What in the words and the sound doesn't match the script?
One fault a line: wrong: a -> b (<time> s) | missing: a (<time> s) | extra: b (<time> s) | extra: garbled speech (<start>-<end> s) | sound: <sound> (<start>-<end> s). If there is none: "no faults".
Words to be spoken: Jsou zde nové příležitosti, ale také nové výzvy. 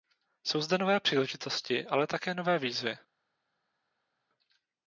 no faults